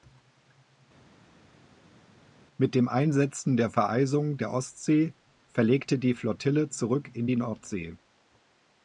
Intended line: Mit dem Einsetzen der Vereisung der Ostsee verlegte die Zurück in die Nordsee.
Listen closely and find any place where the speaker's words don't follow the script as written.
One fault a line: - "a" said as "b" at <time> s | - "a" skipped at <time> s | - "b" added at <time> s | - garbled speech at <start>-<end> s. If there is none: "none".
- "Flottille" added at 6.1 s